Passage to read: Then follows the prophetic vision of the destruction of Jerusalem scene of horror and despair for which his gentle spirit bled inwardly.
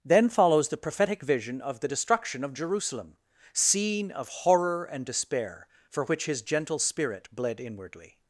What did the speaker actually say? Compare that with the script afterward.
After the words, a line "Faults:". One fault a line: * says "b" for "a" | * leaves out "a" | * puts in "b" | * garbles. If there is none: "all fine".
Then follows the prophetic vision of the destruction of Jerusalem scene of horror and despair for which his gentle spirit bled inwardly.
Faults:
all fine